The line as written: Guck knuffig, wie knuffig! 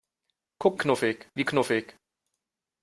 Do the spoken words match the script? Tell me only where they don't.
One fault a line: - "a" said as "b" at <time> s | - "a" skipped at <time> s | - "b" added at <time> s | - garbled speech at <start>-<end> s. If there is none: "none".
none